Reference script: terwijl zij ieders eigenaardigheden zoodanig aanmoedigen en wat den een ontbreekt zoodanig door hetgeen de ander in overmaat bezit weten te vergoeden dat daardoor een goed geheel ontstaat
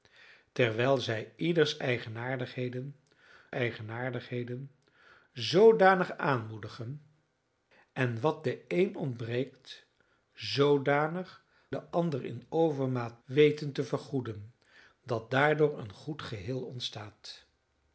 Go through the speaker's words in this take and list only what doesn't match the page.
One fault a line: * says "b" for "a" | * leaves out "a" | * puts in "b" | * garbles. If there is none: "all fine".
* puts in "eigenaardigheden"
* leaves out "door hetgeen"
* leaves out "bezit"